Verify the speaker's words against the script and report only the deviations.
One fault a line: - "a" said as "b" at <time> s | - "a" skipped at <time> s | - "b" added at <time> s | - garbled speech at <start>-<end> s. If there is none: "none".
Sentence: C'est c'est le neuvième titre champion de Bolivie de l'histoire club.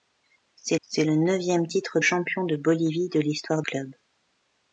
none